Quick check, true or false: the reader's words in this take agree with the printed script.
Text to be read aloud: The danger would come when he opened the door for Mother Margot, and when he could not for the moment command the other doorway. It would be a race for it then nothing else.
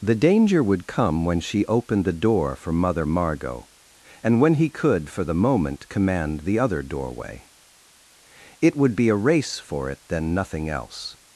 false